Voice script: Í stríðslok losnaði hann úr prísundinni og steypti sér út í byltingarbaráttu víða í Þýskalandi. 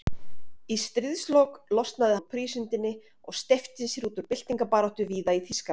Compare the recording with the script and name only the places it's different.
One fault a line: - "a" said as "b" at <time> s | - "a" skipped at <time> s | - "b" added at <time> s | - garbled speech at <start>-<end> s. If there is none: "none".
- "hann" skipped at 2.2 s